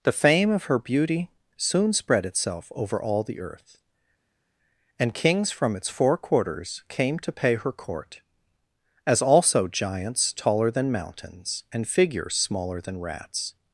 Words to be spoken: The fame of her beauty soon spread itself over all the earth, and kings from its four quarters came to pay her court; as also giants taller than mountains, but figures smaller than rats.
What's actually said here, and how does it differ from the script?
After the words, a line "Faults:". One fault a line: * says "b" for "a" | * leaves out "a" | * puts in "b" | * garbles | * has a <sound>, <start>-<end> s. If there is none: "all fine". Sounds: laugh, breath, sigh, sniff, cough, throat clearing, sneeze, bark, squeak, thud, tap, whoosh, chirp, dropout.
The fame of her beauty soon spread itself over all the earth, and kings from its four quarters came to pay her court; as also giants taller than mountains, and figures smaller than rats.
Faults:
* says "and" for "but"